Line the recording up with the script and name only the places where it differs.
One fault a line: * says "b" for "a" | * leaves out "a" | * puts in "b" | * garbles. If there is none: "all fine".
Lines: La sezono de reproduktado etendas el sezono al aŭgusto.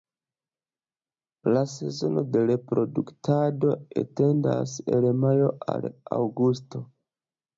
* says "majo" for "sezono"